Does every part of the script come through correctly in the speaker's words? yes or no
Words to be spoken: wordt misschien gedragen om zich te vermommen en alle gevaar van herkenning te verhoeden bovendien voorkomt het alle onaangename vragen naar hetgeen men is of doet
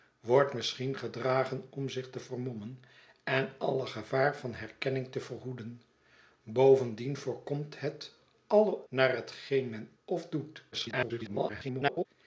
no